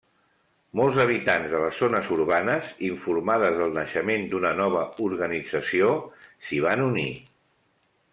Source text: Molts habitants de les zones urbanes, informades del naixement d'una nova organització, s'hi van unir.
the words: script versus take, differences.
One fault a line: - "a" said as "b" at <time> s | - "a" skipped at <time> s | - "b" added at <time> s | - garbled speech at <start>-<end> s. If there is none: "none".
none